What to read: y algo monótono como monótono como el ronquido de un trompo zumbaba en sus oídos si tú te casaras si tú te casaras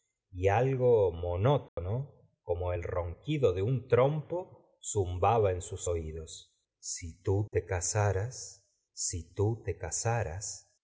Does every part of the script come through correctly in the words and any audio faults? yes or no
no